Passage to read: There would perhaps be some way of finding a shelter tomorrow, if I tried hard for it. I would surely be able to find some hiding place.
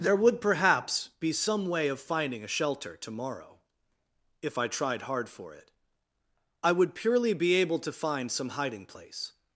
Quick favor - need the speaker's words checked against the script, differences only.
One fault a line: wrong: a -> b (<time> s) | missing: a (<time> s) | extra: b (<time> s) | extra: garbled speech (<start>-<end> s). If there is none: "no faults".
wrong: surely -> purely (7.0 s)